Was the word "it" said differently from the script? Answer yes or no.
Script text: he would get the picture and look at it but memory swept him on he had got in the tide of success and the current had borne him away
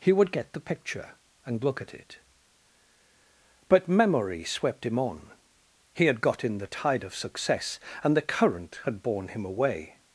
no